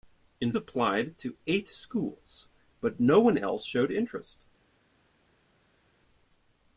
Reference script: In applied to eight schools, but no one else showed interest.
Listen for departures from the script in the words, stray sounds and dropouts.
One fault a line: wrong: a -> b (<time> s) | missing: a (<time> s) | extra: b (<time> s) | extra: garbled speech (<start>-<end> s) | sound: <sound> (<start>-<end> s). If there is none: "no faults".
no faults